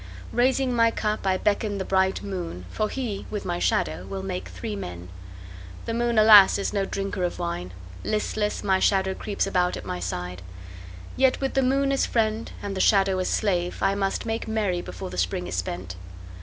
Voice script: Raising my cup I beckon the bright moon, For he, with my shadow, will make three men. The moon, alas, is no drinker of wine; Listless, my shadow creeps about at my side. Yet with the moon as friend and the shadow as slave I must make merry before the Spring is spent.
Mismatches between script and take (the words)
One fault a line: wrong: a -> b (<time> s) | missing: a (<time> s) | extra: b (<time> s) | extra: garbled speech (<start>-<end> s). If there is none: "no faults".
no faults